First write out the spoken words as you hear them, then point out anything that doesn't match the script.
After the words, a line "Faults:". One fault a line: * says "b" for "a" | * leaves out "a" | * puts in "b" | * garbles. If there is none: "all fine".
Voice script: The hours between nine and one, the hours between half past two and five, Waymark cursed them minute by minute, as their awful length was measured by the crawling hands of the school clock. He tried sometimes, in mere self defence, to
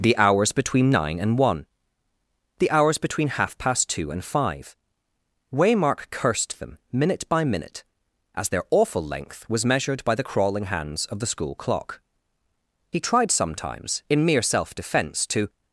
The hours between nine and one, the hours between half past two and five, Waymark cursed them minute by minute, as their awful length was measured by the crawling hands of the school clock. He tried sometimes, in mere self defence, to
Faults:
all fine